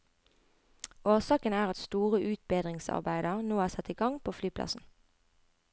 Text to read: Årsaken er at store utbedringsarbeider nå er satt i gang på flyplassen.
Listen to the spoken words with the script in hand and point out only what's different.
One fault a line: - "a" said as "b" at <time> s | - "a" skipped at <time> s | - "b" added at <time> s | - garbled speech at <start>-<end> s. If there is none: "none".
none